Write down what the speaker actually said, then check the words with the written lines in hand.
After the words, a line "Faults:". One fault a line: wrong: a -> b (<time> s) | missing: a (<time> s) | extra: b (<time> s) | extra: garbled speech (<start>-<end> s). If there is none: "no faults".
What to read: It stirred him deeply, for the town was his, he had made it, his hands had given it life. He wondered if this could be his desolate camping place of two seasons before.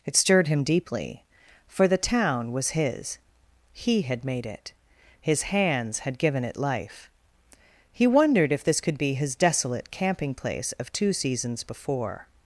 It stirred him deeply, for the town was his, he had made it, his hands had given it life. He wondered if this could be his desolate camping place of two seasons before.
Faults:
no faults